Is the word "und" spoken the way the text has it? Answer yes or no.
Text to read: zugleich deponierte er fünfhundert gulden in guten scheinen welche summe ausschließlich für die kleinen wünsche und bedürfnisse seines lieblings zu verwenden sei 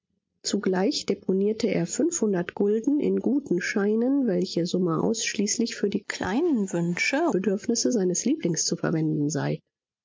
no